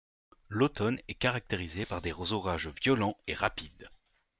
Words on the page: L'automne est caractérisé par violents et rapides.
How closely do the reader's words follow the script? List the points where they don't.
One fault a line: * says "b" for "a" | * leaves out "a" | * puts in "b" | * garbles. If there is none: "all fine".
* puts in "des orages"